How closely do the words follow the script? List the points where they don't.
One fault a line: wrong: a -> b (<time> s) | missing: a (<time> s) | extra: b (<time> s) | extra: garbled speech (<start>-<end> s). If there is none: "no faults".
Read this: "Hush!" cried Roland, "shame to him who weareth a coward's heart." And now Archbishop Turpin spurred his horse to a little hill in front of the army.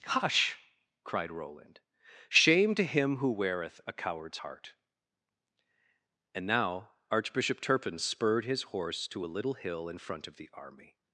no faults